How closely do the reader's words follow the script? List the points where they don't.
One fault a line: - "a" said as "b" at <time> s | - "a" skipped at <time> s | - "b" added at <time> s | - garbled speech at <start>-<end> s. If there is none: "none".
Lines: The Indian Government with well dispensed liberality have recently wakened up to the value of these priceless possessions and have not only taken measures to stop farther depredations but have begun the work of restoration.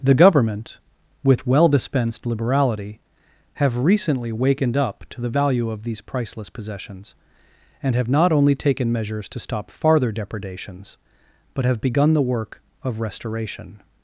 - "Indian" skipped at 0.1 s